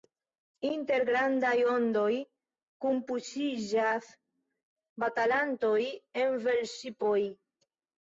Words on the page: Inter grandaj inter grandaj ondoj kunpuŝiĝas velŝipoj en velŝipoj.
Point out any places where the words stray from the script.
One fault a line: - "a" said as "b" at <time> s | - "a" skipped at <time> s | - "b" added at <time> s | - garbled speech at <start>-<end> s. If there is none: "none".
- "inter grandaj" skipped at 1.5 s
- "velŝipoj" said as "batalantoj" at 5.1 s